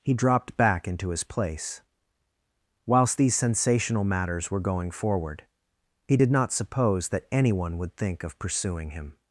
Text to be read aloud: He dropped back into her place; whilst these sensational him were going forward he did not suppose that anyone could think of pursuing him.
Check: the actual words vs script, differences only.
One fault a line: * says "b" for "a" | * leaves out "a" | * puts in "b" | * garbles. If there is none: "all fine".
* says "his" for "her"
* says "matters" for "him"
* says "would" for "could"